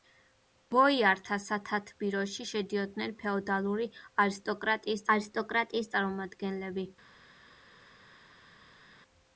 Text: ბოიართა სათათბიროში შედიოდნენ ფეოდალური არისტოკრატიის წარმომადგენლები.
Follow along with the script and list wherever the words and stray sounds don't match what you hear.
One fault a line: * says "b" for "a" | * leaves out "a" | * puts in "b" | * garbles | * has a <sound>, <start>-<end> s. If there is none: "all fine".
* puts in "არისტოკრატიის"